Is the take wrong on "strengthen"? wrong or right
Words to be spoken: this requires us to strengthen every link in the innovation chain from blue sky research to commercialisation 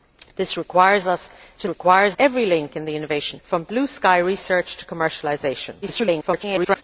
wrong